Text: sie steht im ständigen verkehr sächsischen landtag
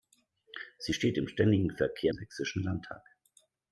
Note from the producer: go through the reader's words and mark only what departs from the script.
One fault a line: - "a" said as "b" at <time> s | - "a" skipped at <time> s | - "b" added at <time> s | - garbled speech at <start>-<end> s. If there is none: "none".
none